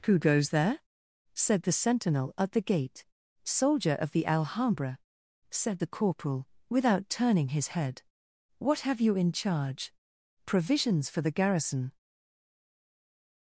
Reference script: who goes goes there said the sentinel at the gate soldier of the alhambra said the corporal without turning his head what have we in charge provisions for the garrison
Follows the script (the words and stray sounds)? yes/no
no